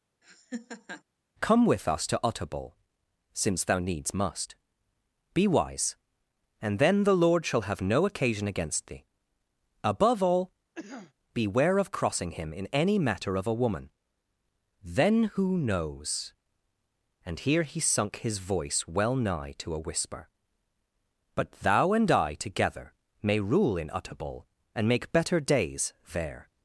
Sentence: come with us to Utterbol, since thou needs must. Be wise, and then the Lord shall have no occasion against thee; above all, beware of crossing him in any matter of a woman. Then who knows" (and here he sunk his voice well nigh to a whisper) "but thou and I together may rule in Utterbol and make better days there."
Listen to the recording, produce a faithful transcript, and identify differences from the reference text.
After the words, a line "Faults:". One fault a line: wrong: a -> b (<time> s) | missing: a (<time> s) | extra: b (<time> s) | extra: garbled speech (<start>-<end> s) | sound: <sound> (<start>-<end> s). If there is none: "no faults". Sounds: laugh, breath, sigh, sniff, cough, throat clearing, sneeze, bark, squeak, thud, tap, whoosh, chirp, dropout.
come with us to Utterbol, since thou needs must. Be wise, and then the Lord shall have no occasion against thee; above all, beware of crossing him in any matter of a woman. Then who knows" (and here he sunk his voice well nigh to a whisper) "but thou and I together may rule in Utterbol and make better days there."
Faults:
sound: laugh (0.2-1.0 s)
sound: cough (10.7-11.1 s)